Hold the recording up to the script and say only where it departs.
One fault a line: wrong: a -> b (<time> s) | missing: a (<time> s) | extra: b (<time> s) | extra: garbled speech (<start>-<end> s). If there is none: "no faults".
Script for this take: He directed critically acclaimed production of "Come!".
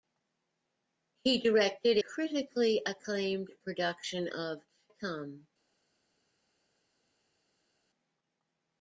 no faults